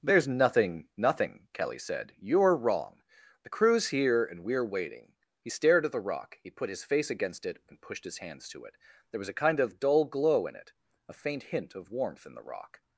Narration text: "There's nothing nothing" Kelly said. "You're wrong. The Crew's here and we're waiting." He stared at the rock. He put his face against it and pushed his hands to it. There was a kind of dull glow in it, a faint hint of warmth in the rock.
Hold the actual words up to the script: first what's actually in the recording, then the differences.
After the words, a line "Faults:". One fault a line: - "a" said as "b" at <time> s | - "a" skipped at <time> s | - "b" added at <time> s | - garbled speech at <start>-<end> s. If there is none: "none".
"There's nothing nothing" Kelly said. "You're wrong. The Crew's here and we're waiting." He stared at the rock. He put his face against it and pushed his hands to it. There was a kind of dull glow in it, a faint hint of warmth in the rock.
Faults:
none